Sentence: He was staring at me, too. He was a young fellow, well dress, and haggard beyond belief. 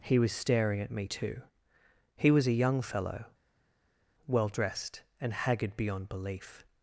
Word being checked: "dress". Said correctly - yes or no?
no